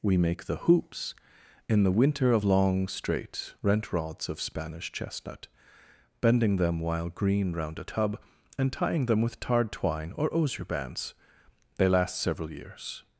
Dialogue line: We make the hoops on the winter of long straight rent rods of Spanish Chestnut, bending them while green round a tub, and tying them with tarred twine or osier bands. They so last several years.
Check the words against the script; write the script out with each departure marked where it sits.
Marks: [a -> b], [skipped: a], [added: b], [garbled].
We make the hoops [on -> in] the winter of long straight rent rods of Spanish Chestnut, bending them while green round a tub, and tying them with tarred twine or osier bands. They [skipped: so] last several years.